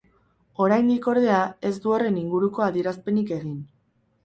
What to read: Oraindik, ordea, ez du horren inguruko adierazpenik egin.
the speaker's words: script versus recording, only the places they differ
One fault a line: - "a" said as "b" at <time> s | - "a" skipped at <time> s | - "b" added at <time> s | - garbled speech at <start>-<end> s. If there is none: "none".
none